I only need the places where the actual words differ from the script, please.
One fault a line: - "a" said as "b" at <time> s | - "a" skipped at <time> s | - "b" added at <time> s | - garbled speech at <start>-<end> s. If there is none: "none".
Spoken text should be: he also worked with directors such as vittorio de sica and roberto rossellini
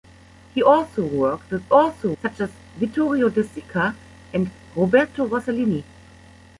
- "directors" said as "also" at 1.7 s